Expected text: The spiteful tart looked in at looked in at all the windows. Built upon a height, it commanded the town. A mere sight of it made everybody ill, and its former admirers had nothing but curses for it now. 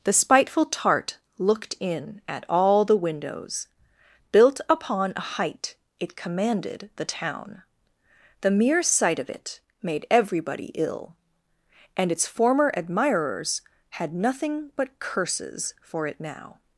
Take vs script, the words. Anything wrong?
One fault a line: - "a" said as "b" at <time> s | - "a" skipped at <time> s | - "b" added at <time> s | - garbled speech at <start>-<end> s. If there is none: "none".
- "looked in at" skipped at 2.4 s
- "A" said as "The" at 8.4 s